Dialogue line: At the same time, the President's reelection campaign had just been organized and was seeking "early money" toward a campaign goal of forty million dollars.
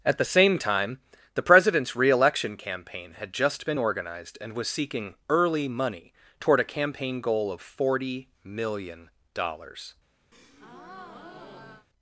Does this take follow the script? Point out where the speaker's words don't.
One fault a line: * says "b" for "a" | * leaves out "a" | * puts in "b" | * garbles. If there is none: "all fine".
all fine